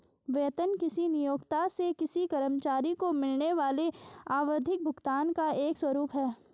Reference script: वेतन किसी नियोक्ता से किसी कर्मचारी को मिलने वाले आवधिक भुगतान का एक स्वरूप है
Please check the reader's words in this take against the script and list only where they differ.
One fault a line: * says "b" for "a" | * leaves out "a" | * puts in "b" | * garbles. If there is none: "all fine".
all fine